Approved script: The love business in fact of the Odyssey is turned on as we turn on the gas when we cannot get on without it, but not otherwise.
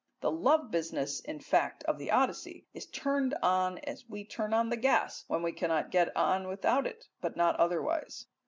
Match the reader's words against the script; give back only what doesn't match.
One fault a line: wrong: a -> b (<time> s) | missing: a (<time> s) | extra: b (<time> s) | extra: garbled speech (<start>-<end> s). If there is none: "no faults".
no faults